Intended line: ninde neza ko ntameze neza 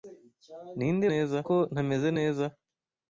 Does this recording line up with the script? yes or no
yes